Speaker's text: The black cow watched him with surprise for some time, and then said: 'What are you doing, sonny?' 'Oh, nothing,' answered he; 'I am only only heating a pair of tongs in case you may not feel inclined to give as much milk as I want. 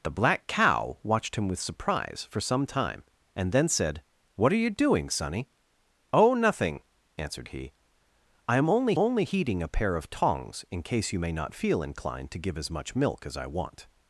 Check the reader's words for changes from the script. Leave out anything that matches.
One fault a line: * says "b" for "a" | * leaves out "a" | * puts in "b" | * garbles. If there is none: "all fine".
all fine